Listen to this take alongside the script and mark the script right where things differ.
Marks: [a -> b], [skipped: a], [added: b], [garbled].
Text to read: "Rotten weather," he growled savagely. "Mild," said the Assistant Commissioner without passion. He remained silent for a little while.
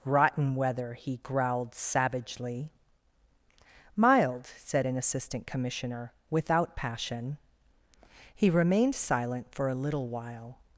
"Rotten weather," he growled savagely. "Mild," said [the -> an] Assistant Commissioner without passion. He remained silent for a little while.